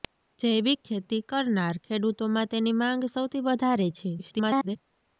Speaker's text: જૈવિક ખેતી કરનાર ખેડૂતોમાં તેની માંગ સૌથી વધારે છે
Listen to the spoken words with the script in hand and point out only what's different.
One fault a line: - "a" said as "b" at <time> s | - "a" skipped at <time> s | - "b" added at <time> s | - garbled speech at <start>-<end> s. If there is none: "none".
- garbled speech at 4.2-4.8 s